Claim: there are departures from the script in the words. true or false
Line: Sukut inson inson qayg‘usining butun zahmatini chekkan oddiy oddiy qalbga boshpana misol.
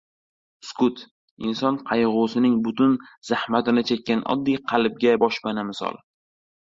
true